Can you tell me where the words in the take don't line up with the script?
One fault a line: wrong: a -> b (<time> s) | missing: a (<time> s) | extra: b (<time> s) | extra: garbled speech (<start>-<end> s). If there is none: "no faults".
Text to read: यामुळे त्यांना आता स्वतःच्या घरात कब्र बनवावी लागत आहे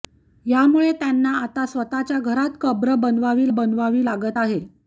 extra: बनवावी (3.5 s)